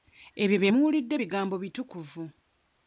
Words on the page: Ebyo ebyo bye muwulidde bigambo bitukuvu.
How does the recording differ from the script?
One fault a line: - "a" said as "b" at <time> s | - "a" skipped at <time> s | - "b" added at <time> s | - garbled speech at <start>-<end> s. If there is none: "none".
- "ebyo" skipped at 0.6 s